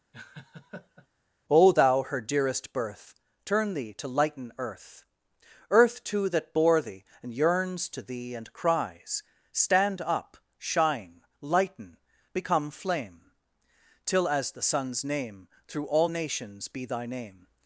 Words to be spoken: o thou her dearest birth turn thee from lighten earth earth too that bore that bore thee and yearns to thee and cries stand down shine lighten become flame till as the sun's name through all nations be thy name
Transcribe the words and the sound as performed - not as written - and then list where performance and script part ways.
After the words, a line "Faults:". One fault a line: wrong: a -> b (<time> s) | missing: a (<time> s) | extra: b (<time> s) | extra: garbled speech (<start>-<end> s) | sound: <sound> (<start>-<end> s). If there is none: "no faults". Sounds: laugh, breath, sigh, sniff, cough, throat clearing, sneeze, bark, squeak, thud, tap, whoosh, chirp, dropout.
o thou her dearest birth turn thee to lighten earth earth too that bore thee and yearns to thee and cries stand up shine lighten become flame till as the sun's name through all nations be thy name
Faults:
sound: laugh (0.1-1.1 s)
wrong: from -> to (3.9 s)
missing: that bore (6.8 s)
wrong: down -> up (10.0 s)